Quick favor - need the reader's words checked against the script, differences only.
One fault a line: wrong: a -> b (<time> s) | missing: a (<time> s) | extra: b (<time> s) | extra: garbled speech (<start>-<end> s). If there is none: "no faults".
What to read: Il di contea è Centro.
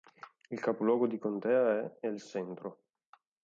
extra: capoluogo (0.6 s)
extra: El (2.1 s)